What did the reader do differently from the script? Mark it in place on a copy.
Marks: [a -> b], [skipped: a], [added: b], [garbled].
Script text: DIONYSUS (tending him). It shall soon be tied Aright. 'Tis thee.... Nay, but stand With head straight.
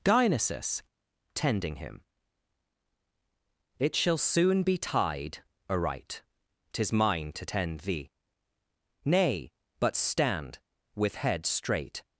DIONYSUS (tending him). It shall soon be tied Aright. 'Tis [added: mine to tend] thee.... Nay, but stand With head straight.